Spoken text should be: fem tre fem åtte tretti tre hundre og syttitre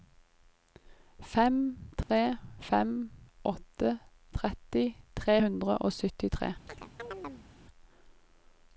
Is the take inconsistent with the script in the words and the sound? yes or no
yes